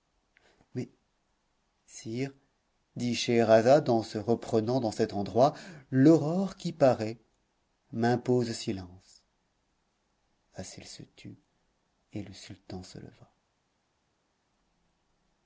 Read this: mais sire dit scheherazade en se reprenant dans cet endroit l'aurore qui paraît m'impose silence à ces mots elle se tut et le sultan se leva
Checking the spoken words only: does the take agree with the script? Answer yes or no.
no